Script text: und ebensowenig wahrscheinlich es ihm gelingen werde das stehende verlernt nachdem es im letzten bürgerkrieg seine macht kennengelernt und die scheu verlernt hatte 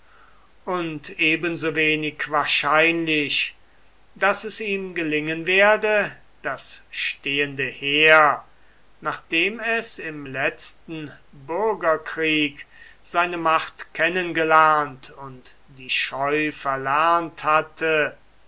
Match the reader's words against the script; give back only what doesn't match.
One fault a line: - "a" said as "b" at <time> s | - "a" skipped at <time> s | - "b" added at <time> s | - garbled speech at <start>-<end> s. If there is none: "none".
- "daß" added at 4.2 s
- "verlernt" said as "heer" at 7.7 s